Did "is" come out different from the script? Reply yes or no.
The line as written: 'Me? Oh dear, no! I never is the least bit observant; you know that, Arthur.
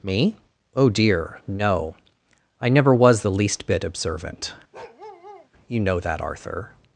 yes